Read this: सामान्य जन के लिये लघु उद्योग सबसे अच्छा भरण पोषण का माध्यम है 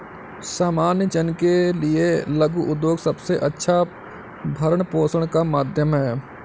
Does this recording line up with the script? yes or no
yes